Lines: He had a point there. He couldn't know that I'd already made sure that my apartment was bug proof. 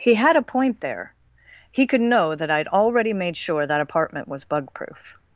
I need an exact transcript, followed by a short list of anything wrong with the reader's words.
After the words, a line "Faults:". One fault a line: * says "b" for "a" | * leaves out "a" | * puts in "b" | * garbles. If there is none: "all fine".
He had a point there. He could know that I'd already made sure that apartment was bug proof.
Faults:
* says "could" for "couldn't"
* leaves out "my"